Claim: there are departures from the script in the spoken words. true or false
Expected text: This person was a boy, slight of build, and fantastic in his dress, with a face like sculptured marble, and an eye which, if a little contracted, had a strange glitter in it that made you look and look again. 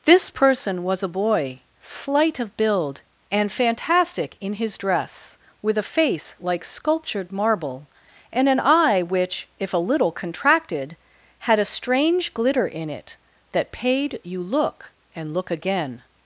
true